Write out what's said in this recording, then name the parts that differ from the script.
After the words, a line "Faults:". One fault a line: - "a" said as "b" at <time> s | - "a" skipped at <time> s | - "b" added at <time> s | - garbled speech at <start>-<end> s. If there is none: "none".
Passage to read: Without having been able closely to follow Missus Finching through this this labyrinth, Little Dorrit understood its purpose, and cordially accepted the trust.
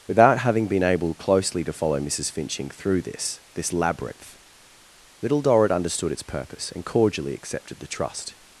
Without having been able closely to follow Missus Finching through this this labyrinth, Little Dorrit understood its purpose, and cordially accepted the trust.
Faults:
none